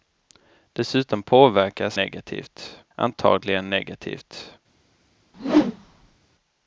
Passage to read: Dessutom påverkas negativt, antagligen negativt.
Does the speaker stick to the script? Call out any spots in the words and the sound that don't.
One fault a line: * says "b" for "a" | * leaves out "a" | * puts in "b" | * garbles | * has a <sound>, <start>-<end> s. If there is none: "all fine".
* has a whoosh, 5.3-6.2 s